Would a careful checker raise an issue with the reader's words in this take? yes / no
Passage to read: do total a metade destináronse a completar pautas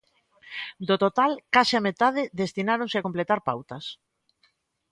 yes